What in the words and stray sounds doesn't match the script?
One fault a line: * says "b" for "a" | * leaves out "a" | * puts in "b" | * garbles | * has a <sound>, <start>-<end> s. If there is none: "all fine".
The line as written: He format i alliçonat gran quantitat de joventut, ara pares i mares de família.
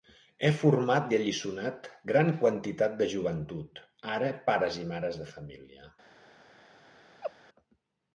* has a laugh, 7.2-7.3 s